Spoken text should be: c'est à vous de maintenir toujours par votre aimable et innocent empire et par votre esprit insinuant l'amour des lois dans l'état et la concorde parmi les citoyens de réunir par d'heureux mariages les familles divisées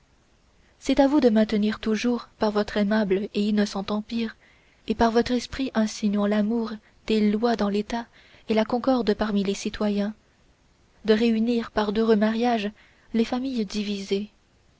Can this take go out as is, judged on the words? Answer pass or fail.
pass